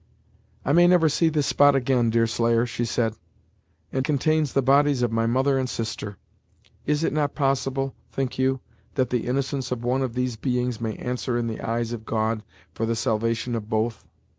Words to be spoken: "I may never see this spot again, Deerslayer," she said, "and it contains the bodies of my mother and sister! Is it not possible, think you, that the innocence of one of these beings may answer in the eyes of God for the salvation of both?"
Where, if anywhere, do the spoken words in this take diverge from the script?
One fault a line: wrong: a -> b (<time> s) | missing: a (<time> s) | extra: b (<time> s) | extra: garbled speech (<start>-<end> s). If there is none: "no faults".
missing: it (4.0 s)